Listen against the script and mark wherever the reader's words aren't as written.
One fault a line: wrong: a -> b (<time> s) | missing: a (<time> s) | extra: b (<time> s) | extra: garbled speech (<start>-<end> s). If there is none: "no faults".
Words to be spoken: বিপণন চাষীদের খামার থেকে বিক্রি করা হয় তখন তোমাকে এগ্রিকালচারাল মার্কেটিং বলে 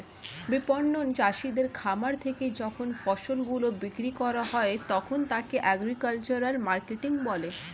extra: যখন ফসল গুলো (2.6 s)
wrong: তোমাকে -> তাকে (5.3 s)